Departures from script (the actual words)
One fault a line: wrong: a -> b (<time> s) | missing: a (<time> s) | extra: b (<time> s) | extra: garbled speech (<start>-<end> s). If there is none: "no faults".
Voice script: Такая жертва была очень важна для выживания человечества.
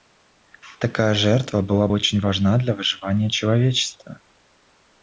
no faults